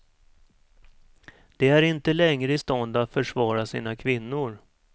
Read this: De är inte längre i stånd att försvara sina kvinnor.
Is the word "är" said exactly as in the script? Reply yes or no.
yes